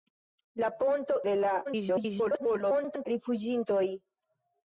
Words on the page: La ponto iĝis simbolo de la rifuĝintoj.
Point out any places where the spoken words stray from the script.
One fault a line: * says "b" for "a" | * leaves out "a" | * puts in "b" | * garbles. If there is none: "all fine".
* leaves out "iĝis simbolo"
* garbles